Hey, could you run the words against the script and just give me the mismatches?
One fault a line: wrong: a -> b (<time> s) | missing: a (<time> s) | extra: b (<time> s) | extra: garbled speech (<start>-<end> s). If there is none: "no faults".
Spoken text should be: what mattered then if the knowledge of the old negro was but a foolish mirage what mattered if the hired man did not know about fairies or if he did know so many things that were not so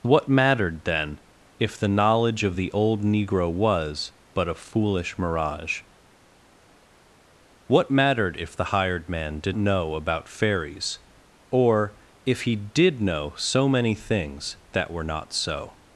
missing: not (9.6 s)